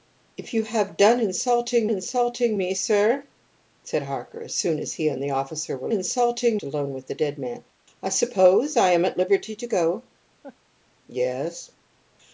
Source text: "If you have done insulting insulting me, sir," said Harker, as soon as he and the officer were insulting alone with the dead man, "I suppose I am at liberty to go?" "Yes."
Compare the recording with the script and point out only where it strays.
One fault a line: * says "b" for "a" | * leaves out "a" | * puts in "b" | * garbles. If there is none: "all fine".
all fine